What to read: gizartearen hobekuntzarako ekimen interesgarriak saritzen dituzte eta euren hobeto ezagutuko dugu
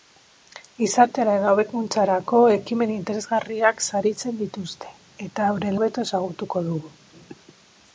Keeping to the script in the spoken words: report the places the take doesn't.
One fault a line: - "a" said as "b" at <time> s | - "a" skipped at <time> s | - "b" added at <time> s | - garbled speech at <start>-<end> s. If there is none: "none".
none